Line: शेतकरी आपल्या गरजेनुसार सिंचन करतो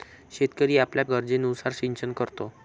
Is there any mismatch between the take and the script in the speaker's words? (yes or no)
no